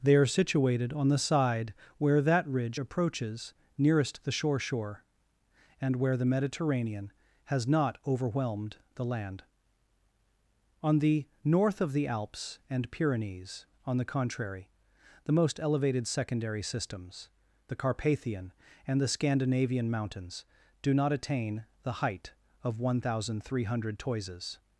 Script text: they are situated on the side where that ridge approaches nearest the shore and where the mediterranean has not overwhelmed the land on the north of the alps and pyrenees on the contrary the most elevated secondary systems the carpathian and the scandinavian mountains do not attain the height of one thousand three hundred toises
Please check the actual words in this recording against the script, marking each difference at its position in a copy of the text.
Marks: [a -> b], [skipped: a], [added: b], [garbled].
they are situated on the side where that ridge approaches nearest the shore [added: shore] and where the mediterranean has not overwhelmed the land on the north of the alps and pyrenees on the contrary the most elevated secondary systems the carpathian and the scandinavian mountains do not attain the height of one thousand three hundred toises